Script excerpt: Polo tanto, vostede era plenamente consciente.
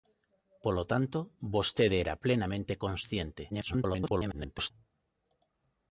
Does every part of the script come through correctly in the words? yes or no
no